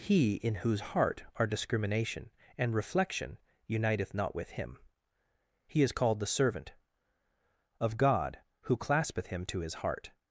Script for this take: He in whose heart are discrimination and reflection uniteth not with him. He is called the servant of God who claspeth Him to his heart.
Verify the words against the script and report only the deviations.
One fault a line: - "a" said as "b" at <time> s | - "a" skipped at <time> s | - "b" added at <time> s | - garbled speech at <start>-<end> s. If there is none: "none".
none